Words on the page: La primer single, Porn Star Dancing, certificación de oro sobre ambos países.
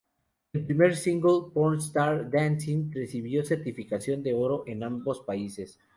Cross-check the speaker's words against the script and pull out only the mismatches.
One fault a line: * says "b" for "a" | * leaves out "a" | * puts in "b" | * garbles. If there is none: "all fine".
* says "El" for "La"
* puts in "recibió"
* says "en" for "sobre"